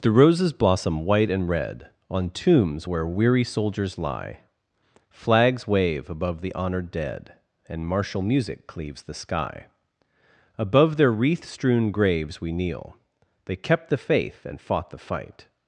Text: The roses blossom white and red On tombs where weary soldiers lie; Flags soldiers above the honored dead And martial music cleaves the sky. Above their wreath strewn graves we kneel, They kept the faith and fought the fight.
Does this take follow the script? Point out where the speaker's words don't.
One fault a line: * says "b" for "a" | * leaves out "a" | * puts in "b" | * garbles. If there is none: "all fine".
* says "wave" for "soldiers"